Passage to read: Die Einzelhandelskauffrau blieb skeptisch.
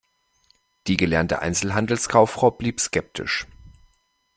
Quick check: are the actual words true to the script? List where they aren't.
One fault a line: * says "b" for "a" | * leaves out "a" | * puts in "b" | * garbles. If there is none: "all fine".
* puts in "gelernte"